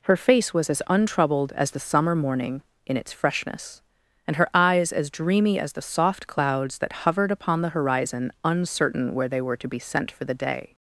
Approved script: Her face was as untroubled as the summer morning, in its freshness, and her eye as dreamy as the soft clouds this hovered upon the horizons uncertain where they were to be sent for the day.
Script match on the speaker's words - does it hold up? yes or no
no